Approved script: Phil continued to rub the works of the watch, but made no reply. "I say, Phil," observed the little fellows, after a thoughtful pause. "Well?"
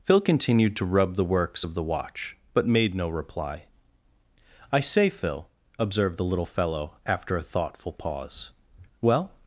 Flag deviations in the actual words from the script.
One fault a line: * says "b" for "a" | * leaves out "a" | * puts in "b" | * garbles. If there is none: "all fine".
* says "fellow" for "fellows"